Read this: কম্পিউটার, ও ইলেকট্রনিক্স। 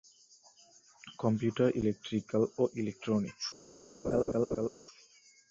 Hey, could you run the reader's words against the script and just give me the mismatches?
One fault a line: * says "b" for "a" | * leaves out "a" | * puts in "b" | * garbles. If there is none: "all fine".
* puts in "ইলেকট্রিক্যাল"